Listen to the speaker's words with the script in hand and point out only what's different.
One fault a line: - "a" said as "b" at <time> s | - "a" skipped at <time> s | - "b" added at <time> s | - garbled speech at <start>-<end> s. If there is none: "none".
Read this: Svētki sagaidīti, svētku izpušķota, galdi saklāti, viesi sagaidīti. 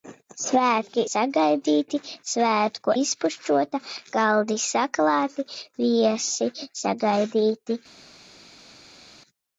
none